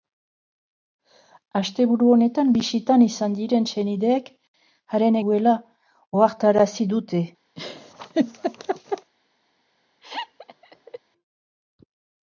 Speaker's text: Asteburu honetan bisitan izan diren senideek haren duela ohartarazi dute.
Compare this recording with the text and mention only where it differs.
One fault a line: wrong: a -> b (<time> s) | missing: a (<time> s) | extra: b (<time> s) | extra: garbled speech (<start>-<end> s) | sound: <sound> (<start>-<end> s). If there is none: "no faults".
sound: laugh (7.6-9.1 s)
sound: laugh (10.0-11.0 s)